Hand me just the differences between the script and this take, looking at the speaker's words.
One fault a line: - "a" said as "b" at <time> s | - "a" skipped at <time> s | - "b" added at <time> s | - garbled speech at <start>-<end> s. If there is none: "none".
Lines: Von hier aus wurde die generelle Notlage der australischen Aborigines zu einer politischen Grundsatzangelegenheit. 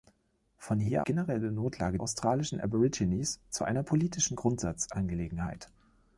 - "aus wurde die" skipped at 1.1 s
- "der" skipped at 2.0 s